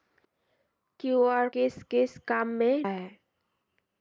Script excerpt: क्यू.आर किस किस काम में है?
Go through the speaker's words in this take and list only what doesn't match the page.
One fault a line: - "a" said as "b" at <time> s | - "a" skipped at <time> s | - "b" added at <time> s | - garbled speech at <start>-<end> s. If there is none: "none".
none